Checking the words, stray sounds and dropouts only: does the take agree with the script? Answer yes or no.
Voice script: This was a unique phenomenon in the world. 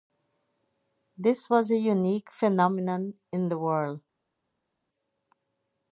yes